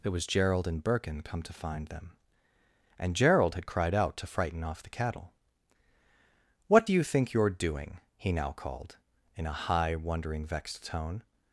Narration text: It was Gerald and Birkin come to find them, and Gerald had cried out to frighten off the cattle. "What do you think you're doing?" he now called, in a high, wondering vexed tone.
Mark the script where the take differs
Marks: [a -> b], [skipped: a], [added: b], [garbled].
It was Gerald and Birkin come to find them, and Gerald had cried out to frighten off the cattle. "What do you think you're doing?" he now called, in a high, wondering vexed tone.